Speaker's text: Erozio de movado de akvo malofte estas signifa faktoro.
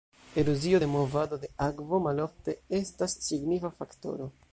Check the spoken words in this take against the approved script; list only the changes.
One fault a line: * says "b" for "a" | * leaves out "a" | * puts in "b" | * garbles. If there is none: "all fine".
all fine